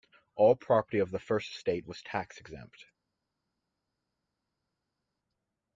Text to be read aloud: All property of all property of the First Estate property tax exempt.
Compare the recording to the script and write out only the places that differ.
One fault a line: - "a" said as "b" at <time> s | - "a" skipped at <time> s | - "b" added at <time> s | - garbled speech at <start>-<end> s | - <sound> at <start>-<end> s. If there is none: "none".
- "all property of" skipped at 1.1 s
- "property" said as "was" at 1.9 s